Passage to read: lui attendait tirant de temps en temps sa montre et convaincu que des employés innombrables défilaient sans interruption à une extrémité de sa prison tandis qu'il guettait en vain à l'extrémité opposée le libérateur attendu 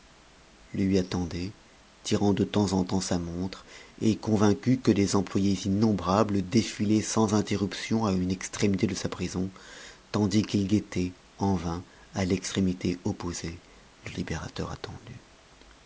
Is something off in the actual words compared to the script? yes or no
no